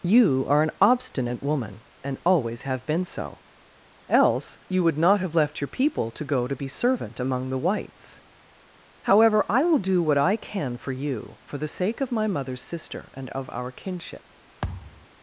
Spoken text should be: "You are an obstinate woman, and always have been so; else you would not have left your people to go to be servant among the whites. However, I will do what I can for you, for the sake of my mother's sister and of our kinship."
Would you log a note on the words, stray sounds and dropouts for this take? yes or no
yes